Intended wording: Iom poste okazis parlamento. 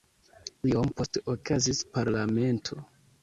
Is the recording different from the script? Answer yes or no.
no